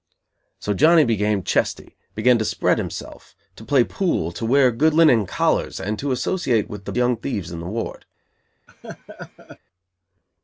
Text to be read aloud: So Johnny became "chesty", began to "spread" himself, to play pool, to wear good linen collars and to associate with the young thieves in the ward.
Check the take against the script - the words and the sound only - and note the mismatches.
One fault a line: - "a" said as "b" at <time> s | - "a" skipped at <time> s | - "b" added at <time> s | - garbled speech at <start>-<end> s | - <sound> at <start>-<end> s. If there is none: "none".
- laugh at 8.7-9.6 s